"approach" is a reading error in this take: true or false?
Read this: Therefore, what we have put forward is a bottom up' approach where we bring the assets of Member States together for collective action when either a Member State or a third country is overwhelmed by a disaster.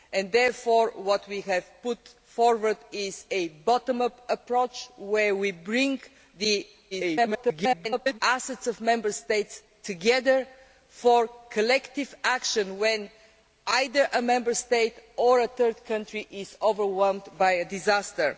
false